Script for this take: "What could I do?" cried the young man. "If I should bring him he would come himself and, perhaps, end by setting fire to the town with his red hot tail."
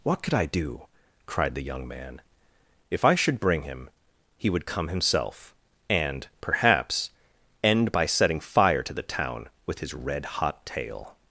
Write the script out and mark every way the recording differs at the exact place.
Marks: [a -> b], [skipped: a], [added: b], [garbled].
"What could I do?" cried the young man. "If I should bring him he would come himself and, perhaps, end by setting fire to the town with his red hot tail."